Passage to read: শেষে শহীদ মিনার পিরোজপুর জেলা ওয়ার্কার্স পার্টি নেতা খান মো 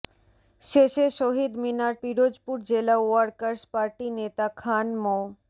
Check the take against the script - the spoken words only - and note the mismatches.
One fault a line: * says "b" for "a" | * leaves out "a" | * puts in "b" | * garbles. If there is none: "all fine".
all fine